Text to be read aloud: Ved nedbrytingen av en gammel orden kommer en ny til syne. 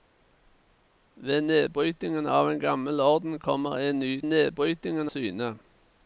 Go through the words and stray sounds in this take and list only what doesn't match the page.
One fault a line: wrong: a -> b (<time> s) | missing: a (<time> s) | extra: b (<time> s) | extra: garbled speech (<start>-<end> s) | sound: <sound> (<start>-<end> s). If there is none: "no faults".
wrong: til -> nedbrytingen (4.2 s)